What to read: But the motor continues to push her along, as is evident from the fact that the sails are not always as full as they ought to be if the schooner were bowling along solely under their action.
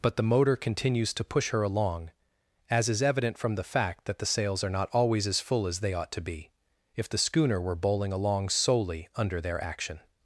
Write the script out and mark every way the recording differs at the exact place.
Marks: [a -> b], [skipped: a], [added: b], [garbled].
But the motor continues to push her along, as is evident from the fact that the sails are not always as full as they ought to be if the schooner were bowling along solely under their action.